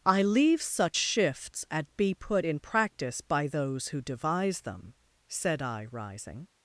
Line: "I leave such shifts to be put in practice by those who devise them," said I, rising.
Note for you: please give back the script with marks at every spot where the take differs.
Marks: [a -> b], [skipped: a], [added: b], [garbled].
"I leave such shifts [to -> at] be put in practice by those who devise them," said I, rising.